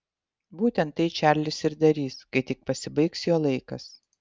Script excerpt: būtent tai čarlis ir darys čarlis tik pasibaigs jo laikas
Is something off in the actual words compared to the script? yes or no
yes